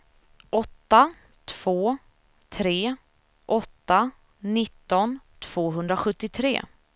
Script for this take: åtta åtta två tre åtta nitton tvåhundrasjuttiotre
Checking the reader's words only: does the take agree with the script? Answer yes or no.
no